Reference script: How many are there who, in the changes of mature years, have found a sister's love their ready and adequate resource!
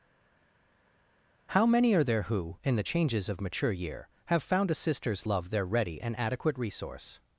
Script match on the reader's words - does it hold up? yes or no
no